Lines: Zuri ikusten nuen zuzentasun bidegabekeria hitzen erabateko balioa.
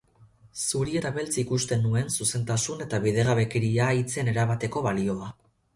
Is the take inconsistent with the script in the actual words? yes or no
yes